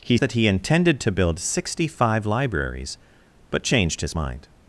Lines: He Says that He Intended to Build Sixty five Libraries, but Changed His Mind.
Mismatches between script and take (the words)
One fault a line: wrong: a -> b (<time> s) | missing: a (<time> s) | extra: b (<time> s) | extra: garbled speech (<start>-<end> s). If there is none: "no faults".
missing: Says (0.2 s)